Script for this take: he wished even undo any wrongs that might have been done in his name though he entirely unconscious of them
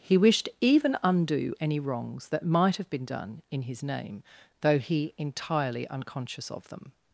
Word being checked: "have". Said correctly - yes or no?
yes